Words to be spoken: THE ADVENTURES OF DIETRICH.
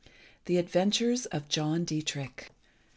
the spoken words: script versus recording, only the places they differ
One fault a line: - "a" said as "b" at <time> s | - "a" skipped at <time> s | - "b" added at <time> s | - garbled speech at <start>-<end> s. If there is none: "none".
- "JOHN" added at 1.5 s